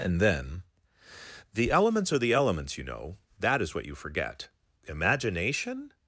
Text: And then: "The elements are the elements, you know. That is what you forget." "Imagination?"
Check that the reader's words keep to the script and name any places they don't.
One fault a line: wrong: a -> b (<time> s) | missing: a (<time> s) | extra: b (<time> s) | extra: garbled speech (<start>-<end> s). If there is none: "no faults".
no faults